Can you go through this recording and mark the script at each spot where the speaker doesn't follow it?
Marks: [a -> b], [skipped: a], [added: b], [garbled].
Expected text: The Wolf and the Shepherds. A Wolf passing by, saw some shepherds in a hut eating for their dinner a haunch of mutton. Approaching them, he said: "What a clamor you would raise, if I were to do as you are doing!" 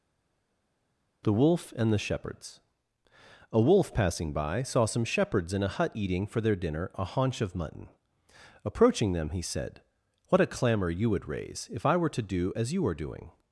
The Wolf and the Shepherds. A Wolf passing by, saw some shepherds in a hut eating for their dinner a haunch of mutton. Approaching them, he said: "What a clamor you would raise, if I were to do as you are doing!"